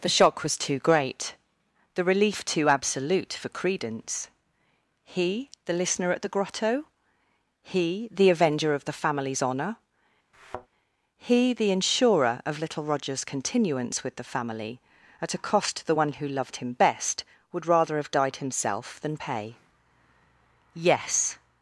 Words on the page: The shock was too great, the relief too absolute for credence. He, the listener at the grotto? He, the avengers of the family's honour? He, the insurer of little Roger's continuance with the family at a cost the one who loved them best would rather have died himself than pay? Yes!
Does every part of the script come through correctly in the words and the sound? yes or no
no